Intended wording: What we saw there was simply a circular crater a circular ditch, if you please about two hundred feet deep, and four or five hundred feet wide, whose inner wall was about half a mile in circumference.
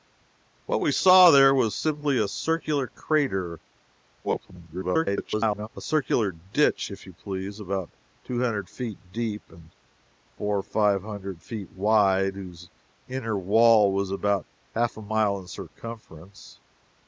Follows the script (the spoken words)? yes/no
no